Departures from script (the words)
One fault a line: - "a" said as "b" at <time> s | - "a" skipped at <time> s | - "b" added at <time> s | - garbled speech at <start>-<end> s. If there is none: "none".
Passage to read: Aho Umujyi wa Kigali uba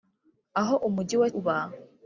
- "Kigali" skipped at 1.3 s